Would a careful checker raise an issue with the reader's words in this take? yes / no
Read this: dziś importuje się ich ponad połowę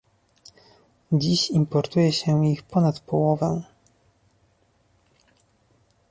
no